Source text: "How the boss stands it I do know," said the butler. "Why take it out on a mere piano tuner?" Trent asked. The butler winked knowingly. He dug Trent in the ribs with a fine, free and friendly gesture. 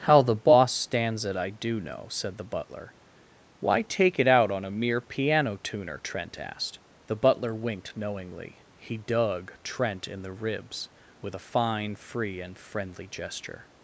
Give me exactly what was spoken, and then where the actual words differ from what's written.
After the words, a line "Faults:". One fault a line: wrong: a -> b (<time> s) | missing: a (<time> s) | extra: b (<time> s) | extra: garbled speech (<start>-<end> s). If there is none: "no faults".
"How the boss stands it I do know," said the butler. "Why take it out on a mere piano tuner?" Trent asked. The butler winked knowingly. He dug Trent in the ribs with a fine, free and friendly gesture.
Faults:
no faults